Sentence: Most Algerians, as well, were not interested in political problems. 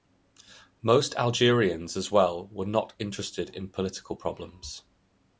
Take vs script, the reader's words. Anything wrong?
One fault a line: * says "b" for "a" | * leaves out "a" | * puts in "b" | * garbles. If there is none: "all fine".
all fine